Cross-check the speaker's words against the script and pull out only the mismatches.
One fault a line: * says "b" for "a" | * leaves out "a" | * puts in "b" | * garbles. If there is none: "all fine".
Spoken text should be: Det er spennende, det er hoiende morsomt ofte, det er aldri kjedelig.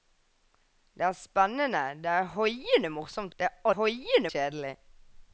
* leaves out "ofte"
* says "hoiende" for "aldri"